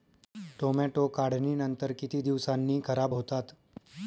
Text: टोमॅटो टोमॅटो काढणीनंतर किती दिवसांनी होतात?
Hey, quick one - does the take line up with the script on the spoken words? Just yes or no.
no